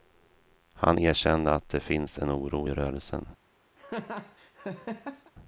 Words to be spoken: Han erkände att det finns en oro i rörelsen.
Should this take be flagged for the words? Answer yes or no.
no